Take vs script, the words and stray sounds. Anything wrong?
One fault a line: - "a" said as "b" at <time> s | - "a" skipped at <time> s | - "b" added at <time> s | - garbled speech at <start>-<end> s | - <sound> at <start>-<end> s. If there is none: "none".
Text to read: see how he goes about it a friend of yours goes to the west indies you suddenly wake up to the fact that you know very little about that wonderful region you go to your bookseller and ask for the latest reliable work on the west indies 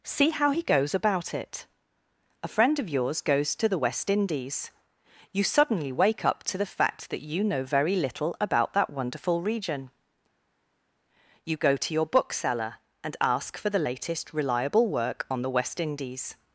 none